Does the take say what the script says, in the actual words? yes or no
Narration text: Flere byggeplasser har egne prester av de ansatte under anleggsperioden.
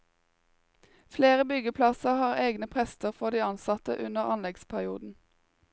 no